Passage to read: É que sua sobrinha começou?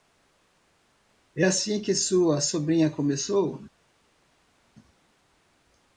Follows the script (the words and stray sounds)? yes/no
no